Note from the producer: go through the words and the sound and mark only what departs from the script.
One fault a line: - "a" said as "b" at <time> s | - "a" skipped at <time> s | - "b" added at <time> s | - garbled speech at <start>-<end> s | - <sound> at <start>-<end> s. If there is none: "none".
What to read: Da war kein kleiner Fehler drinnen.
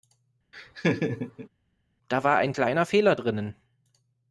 - laugh at 0.5-1.5 s
- "kein" said as "ein" at 2.4 s